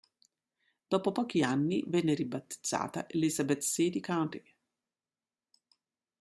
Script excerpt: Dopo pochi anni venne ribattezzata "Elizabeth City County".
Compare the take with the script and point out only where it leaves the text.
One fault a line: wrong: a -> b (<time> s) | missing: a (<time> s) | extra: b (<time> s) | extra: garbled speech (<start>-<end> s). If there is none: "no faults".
no faults